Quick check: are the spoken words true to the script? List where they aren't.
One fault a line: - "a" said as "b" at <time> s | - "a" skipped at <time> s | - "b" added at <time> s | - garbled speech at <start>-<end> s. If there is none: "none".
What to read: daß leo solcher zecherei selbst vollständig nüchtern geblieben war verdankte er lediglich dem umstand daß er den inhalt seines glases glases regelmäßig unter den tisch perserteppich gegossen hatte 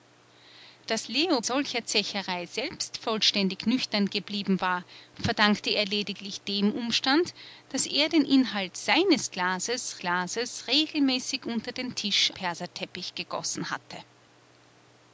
none